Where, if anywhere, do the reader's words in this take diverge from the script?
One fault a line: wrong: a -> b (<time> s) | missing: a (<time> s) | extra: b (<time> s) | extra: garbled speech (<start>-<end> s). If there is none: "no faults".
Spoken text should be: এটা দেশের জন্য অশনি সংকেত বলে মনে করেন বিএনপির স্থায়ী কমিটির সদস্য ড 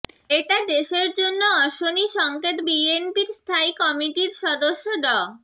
missing: বলে মনে করেন (2.6 s)